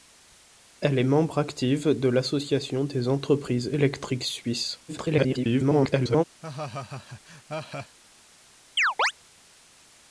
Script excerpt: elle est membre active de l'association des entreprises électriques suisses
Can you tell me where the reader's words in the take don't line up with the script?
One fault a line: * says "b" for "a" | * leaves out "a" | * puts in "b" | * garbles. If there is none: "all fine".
* garbles